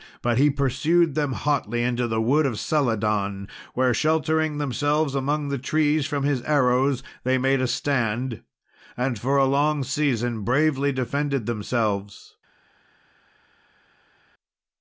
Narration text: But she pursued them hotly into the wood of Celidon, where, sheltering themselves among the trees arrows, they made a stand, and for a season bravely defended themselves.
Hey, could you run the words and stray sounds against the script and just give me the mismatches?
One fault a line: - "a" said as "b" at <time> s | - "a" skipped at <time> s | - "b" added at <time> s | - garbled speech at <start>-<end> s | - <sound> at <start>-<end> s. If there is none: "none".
- "she" said as "he" at 0.4 s
- "from his" added at 6.0 s
- "long" added at 9.5 s